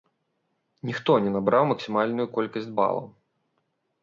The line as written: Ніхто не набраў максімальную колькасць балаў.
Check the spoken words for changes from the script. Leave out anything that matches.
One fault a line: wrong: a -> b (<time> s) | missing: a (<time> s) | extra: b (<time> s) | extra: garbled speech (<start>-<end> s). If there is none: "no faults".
no faults